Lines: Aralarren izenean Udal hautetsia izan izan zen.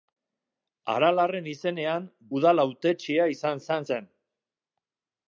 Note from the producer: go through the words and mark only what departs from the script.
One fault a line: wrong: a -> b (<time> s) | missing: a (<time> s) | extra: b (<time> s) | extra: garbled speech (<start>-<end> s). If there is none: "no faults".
no faults